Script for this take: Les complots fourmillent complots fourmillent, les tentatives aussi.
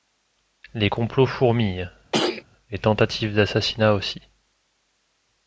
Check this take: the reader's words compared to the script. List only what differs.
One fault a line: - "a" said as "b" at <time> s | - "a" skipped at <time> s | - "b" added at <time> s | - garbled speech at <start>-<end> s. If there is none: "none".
- "complots fourmillent" skipped at 1.9 s
- "d'assassinat" added at 3.3 s